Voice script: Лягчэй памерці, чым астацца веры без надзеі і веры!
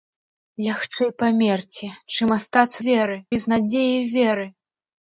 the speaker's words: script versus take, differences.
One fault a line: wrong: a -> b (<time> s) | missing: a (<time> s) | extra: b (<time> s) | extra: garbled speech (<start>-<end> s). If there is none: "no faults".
no faults